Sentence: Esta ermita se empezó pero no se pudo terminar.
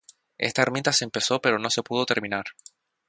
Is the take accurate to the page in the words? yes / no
yes